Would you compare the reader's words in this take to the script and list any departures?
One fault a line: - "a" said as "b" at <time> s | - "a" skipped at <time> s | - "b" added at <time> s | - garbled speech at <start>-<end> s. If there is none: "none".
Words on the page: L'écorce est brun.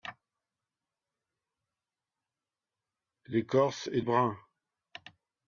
none